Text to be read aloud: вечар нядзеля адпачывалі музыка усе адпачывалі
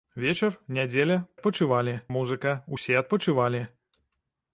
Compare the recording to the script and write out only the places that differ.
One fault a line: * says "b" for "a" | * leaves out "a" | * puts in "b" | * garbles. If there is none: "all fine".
all fine